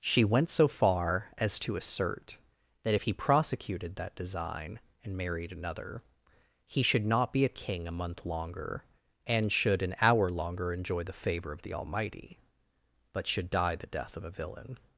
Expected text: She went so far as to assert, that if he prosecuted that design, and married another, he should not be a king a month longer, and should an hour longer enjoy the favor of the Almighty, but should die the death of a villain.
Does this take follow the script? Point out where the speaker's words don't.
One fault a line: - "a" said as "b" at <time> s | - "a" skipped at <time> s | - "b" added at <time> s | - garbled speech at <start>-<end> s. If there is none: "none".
none